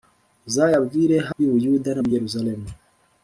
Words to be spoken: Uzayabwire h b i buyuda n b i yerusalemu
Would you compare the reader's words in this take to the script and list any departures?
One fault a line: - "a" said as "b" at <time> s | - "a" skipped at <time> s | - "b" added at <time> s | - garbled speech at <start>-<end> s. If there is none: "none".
none